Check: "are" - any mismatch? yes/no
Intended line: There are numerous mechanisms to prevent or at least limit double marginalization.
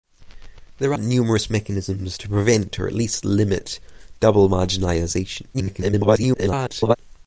yes